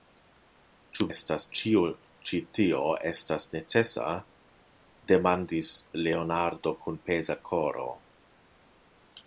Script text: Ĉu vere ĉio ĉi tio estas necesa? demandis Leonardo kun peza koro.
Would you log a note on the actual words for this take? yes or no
yes